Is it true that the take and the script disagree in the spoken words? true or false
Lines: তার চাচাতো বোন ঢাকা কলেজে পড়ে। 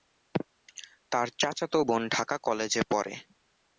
false